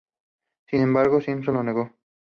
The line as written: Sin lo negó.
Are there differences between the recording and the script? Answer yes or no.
yes